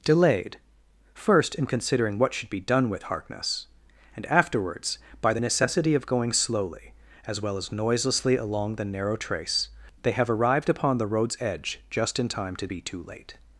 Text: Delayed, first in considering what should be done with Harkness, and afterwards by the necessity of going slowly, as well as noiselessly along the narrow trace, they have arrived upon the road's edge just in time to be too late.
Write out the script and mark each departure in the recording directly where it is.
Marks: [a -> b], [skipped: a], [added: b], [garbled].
Delayed, first in considering what should be done with Harkness, and afterwards by the necessity of going slowly, as well as noiselessly along the narrow trace, they have arrived upon the road's edge just in time to be too late.